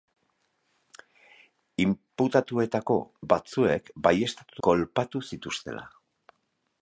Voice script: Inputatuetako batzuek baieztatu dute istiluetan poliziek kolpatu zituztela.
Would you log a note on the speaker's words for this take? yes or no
yes